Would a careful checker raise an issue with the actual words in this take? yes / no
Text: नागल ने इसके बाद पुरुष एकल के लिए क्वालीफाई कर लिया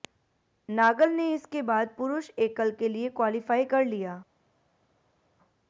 no